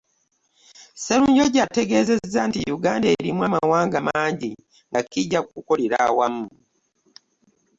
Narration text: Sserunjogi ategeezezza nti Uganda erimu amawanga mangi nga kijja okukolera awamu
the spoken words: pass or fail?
pass